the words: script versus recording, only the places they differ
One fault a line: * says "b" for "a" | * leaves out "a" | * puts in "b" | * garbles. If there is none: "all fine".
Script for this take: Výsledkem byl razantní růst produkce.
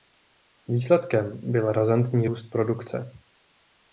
all fine